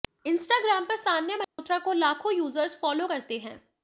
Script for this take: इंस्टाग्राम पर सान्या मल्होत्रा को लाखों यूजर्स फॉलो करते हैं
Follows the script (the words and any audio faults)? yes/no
no